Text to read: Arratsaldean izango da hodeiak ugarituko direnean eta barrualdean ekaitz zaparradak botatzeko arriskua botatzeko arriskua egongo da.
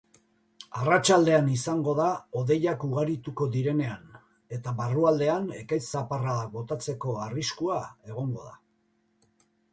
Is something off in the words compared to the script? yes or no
yes